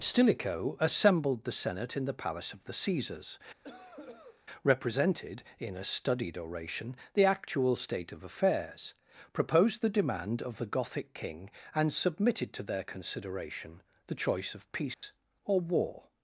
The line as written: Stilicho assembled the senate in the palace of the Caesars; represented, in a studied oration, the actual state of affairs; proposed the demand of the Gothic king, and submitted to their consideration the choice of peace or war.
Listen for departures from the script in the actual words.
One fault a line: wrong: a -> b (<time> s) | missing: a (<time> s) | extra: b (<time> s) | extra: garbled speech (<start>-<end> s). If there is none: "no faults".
no faults